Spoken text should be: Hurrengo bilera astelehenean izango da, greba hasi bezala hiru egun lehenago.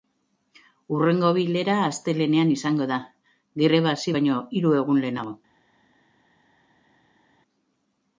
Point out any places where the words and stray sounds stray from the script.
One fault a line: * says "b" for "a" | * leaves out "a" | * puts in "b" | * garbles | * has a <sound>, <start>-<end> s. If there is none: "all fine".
* says "baino" for "bezala"